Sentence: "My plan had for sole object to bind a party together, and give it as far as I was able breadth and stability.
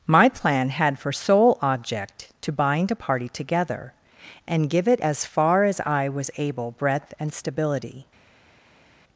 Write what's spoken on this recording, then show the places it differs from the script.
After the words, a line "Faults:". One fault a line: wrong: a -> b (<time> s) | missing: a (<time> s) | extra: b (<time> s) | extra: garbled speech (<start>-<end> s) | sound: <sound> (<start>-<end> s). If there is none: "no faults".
"My plan had for sole object to bind a party together, and give it as far as I was able breadth and stability.
Faults:
no faults